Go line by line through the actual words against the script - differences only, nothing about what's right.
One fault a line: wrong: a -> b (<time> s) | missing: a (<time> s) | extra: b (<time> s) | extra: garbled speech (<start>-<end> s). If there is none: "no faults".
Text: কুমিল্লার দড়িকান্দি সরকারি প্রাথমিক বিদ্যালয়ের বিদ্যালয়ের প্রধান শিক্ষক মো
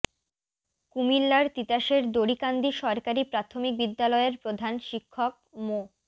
extra: তিতাসের (1.6 s)
missing: বিদ্যালয়ের (4.3 s)